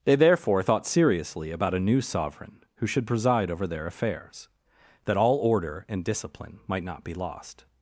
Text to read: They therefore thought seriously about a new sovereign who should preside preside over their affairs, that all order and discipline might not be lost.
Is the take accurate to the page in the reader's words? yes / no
no